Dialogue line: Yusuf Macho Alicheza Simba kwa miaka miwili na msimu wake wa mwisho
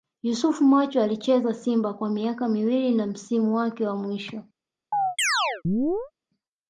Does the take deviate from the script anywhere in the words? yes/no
no